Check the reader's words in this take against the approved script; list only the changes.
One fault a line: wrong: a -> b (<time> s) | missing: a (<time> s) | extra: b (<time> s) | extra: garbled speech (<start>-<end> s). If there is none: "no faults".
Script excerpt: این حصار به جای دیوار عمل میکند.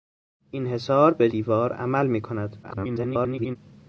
missing: جای (1.3 s)
extra: garbled speech (2.6-3.6 s)